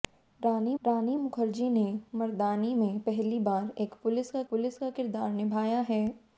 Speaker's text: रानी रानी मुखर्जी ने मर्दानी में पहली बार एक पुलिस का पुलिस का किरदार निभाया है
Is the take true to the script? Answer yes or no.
yes